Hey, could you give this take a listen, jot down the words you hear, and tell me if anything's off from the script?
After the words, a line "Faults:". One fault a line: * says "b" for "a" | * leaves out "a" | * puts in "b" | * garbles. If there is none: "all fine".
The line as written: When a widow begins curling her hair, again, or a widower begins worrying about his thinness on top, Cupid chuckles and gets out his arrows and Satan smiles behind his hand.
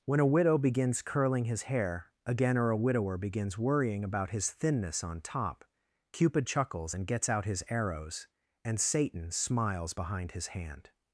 When a widow begins curling his hair, again, or a widower begins worrying about his thinness on top, Cupid chuckles and gets out his arrows and Satan smiles behind his hand.
Faults:
* says "his" for "her"